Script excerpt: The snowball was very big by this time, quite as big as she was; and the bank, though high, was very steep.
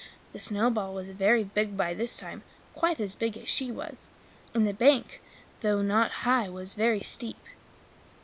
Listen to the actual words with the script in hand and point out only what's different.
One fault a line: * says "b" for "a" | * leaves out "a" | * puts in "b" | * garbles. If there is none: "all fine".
* puts in "not"